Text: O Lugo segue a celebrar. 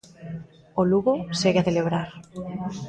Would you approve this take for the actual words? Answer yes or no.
yes